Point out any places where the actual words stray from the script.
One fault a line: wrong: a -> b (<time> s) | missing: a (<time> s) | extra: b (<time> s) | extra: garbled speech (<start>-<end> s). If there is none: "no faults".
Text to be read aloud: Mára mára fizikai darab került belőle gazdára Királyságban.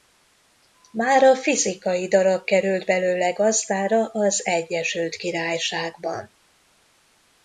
missing: mára (1.4 s)
extra: az Egyesült (4.0 s)